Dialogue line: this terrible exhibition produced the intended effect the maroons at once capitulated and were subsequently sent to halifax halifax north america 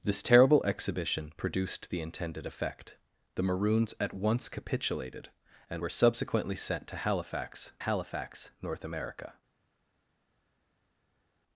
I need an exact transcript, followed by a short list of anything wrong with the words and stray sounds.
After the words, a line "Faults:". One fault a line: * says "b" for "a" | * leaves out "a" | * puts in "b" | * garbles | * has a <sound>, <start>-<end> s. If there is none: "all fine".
this terrible exhibition produced the intended effect the maroons at once capitulated and were subsequently sent to halifax halifax north america
Faults:
all fine